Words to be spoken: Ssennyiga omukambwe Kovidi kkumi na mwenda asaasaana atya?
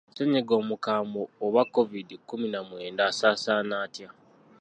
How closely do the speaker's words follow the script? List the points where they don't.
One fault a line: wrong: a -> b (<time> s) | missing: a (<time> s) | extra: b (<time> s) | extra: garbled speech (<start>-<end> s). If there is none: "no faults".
extra: oba (1.4 s)